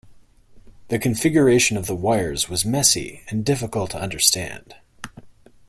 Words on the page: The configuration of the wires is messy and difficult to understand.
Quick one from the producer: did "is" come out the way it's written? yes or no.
no